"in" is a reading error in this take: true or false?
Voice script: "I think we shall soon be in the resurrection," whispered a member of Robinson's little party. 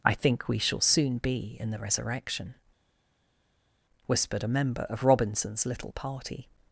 false